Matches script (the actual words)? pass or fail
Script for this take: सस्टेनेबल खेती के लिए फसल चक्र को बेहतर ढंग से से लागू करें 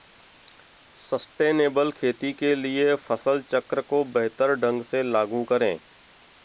fail